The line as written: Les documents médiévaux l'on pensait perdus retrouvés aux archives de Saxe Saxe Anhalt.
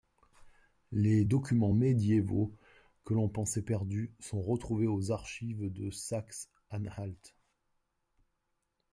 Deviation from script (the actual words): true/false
true